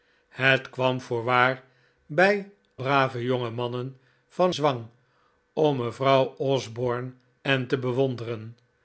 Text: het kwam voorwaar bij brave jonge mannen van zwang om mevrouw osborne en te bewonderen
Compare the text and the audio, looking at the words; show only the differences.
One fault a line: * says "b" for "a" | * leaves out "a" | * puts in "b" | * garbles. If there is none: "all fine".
all fine